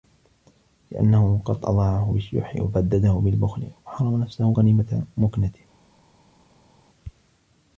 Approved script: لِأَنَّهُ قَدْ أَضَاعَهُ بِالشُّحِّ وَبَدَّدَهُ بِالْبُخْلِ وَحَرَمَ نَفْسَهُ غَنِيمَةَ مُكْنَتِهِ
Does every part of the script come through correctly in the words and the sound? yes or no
yes